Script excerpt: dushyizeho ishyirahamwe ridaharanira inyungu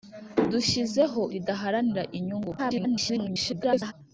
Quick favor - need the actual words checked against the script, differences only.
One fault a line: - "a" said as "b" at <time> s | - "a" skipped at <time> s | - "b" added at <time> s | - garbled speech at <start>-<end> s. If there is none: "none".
- "ishyirahamwe" skipped at 1.2 s
- garbled speech at 2.6-3.9 s